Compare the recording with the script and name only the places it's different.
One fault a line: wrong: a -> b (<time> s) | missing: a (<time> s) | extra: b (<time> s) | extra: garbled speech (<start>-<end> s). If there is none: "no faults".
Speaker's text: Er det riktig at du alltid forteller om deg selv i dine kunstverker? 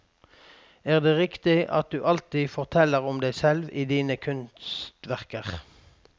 no faults